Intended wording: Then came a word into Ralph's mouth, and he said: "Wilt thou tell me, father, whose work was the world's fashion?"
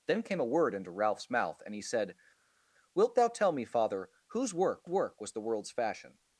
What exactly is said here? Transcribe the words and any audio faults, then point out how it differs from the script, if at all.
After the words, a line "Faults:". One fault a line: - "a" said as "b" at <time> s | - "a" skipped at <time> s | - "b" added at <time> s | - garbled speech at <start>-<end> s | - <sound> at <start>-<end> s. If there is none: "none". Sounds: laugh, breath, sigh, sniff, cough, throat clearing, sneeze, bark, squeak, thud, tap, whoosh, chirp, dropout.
Then came a word into Ralph's mouth, and he said: "Wilt thou tell me, father, whose work work was the world's fashion?"
Faults:
- "work" added at 4.9 s